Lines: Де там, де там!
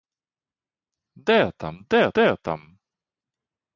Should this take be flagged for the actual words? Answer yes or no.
yes